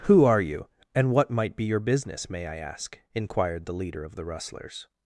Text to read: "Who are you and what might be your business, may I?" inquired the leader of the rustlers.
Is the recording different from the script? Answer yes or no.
yes